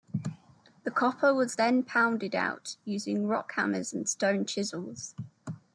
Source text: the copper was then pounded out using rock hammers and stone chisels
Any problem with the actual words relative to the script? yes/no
no